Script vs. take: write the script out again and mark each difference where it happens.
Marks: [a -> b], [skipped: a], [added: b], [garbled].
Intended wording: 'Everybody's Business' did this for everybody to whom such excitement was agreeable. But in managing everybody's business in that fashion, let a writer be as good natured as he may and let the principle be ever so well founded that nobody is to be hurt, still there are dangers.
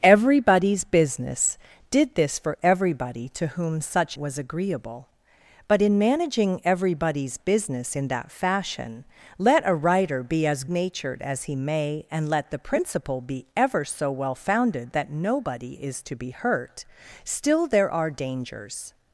'Everybody's Business' did this for everybody to whom such [skipped: excitement] was agreeable. But in managing everybody's business in that fashion, let a writer be as [skipped: good] natured as he may and let the principle be ever so well founded that nobody is to be hurt, still there are dangers.